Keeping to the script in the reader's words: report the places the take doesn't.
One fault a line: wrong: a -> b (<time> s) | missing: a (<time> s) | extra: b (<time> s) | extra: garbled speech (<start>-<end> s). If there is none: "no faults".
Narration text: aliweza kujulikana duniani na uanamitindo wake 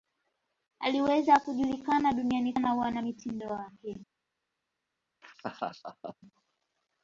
no faults